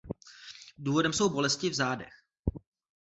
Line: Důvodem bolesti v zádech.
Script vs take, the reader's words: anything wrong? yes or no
yes